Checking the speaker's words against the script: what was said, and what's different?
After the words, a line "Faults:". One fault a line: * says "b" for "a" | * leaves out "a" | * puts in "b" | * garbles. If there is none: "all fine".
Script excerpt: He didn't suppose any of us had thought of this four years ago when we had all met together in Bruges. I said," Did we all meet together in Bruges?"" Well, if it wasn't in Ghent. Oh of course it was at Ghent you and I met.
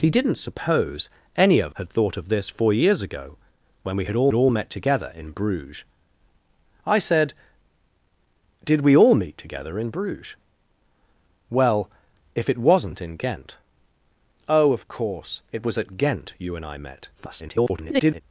He didn't suppose any of had thought of this four years ago when we had all all met together in Bruges. I said," Did we all meet together in Bruges?"" Well, if it wasn't in Ghent. Oh of course it was at Ghent you and I met. [garbled]
Faults:
* leaves out "us"
* puts in "all"
* garbles